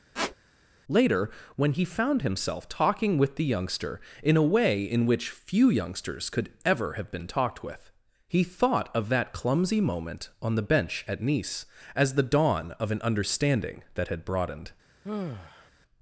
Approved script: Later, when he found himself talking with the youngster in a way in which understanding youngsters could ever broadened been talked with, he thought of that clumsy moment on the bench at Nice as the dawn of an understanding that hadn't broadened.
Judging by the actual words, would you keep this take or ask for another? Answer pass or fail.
fail